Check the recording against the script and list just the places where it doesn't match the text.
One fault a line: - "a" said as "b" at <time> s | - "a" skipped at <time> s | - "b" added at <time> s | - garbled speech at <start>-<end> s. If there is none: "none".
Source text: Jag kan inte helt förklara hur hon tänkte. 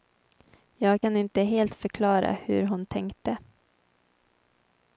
none